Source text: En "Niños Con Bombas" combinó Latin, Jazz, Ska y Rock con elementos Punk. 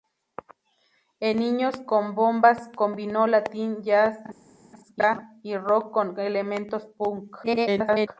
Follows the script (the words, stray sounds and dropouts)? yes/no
no